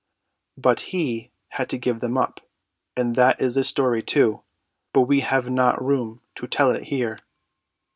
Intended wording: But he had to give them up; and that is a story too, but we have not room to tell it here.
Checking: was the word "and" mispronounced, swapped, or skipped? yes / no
no